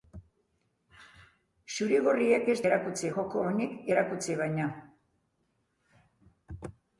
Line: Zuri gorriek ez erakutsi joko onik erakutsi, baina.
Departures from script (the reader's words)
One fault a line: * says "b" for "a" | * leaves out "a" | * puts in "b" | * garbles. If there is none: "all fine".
all fine